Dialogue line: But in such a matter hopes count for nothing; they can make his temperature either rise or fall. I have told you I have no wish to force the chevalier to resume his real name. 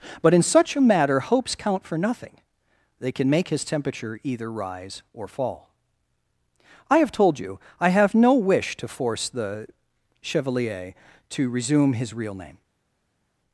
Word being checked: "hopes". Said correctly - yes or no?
yes